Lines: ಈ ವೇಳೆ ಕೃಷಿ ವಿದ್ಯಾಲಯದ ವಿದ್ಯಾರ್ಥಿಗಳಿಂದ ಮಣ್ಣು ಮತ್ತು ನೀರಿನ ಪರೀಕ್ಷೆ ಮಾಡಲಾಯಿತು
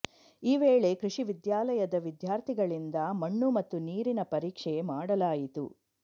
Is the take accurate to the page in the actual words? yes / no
yes